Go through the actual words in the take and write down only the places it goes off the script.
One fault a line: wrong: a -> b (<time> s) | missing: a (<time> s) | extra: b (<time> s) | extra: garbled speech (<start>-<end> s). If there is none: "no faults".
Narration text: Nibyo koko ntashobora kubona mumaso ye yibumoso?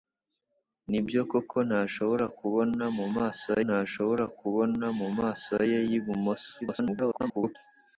extra: ntashobora kubona mumaso (3.7 s)
extra: garbled speech (6.6-7.6 s)